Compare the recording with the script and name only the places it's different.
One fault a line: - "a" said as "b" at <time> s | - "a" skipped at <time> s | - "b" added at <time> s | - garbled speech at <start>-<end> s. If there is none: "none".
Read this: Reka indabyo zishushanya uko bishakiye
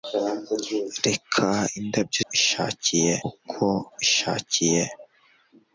- "zishushanya" said as "bishakiye" at 2.3 s